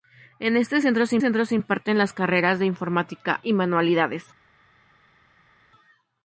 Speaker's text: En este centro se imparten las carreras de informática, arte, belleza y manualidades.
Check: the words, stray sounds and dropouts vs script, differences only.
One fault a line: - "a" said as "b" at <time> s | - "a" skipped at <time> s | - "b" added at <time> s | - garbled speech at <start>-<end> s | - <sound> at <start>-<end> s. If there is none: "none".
- "centro se" added at 1.2 s
- "arte belleza" skipped at 3.4 s